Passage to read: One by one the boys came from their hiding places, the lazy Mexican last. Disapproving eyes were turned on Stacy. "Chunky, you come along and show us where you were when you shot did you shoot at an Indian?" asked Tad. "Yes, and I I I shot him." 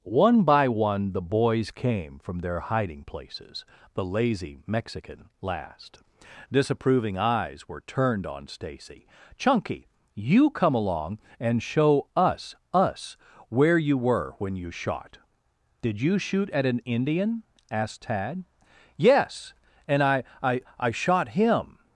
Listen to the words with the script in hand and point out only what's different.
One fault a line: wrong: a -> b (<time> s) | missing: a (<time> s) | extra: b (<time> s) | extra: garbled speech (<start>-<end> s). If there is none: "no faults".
extra: us (12.7 s)